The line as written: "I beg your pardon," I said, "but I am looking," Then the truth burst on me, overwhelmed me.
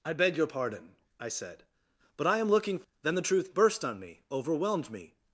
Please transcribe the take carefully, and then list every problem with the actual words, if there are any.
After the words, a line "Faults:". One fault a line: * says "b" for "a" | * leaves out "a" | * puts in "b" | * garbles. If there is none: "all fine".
"I beg your pardon," I said, "but I am looking," Then the truth burst on me, overwhelmed me.
Faults:
all fine